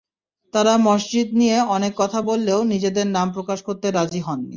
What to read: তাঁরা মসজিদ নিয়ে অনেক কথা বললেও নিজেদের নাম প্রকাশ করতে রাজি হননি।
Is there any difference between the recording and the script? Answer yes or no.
no